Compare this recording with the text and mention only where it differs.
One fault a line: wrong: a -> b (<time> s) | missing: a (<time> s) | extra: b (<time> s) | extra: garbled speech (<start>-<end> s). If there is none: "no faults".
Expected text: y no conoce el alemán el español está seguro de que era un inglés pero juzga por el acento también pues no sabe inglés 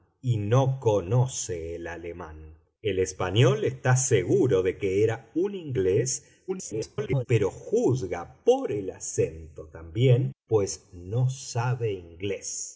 extra: garbled speech (6.5-7.3 s)